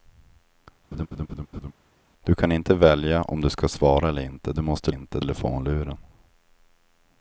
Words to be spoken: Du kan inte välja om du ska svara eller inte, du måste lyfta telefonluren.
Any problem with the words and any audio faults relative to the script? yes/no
yes